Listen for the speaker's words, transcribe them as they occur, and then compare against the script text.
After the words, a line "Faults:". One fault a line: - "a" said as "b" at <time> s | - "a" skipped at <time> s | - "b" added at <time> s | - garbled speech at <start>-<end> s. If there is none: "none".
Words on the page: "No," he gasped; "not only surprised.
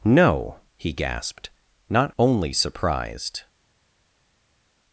"No," he gasped; "not only surprised.
Faults:
none